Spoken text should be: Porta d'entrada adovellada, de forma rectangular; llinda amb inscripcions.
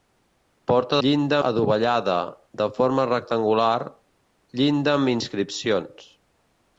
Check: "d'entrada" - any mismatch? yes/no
yes